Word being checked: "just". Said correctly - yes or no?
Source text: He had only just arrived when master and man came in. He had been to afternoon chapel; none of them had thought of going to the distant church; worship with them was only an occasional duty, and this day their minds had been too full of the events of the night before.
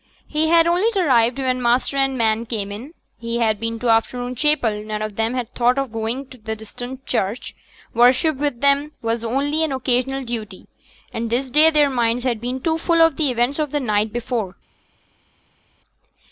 no